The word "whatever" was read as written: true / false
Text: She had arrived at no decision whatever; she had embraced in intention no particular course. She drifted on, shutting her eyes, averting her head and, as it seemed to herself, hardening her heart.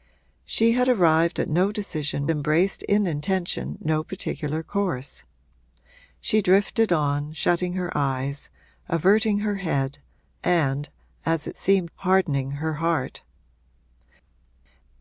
false